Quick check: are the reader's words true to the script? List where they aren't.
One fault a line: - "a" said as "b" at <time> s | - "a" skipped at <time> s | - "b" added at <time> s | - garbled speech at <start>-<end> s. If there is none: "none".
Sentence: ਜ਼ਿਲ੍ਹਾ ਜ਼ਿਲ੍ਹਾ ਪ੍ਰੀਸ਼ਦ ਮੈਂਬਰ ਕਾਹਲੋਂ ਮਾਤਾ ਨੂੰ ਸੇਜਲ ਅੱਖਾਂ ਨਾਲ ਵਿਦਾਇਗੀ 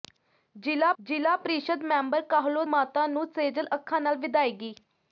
none